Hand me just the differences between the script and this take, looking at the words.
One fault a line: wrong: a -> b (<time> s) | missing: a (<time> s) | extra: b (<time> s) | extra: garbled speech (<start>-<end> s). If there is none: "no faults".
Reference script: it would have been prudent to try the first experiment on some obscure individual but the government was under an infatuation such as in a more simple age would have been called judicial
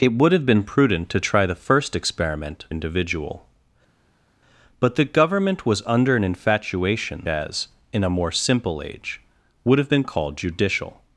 missing: on some obscure (2.6 s)
missing: such (7.3 s)